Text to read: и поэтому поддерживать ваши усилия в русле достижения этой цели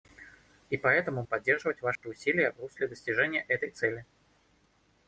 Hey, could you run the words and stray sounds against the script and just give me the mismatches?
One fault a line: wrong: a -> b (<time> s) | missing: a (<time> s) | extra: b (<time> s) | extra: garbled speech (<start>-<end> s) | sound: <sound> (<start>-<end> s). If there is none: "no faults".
sound: dropout (1.9-2.0 s)